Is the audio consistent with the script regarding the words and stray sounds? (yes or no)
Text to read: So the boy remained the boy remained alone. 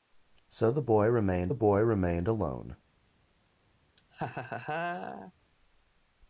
no